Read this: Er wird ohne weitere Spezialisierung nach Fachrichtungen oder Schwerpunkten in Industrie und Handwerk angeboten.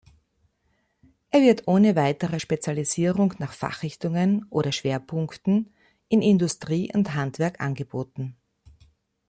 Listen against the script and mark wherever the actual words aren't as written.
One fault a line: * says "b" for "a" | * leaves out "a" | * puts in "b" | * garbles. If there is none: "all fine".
all fine